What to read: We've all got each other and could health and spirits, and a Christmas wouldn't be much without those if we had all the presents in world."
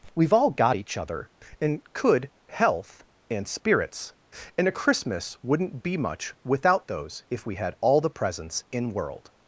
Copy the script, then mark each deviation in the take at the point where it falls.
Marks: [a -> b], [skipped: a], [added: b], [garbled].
We've all got each other and could health and spirits, and a Christmas wouldn't be much without those if we had all the presents in world."